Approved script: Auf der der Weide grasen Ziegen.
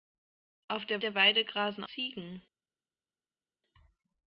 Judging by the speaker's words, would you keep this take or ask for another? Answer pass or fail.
pass